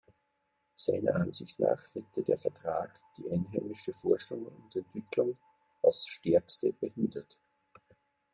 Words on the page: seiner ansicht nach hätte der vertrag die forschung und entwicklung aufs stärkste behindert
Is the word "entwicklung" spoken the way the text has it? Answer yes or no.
yes